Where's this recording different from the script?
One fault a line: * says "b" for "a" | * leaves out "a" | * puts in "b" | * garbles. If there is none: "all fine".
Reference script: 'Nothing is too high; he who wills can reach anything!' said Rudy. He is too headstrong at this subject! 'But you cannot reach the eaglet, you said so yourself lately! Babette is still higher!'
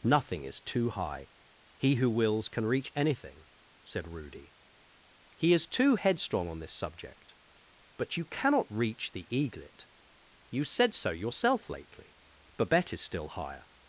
* says "on" for "at"